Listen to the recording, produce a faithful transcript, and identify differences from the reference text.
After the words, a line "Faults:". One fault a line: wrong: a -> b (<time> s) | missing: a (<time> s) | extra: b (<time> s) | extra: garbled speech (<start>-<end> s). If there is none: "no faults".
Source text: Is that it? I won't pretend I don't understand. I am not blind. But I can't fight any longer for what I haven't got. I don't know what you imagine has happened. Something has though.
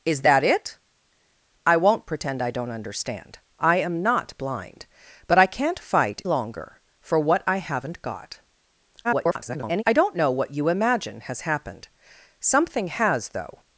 Is that it? I won't pretend I don't understand. I am not blind. But I can't fight longer for what I haven't got. [garbled] I don't know what you imagine has happened. Something has though.
Faults:
missing: any (6.2 s)
extra: garbled speech (9.0-9.8 s)